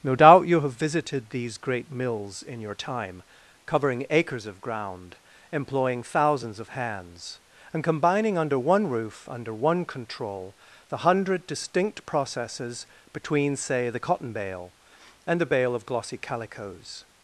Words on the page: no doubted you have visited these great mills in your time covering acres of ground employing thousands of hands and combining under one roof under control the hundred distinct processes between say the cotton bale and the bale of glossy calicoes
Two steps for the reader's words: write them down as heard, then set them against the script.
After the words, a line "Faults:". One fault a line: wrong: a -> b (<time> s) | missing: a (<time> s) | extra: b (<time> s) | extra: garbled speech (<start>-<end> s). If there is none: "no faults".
no doubt you have visited these great mills in your time covering acres of ground employing thousands of hands and combining under one roof under one control the hundred distinct processes between say the cotton bale and the bale of glossy calicoes
Faults:
wrong: doubted -> doubt (0.1 s)
extra: one (9.5 s)